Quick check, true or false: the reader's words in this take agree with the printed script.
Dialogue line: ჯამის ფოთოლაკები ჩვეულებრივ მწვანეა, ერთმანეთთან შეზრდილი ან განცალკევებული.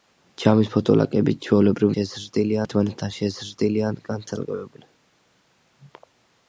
false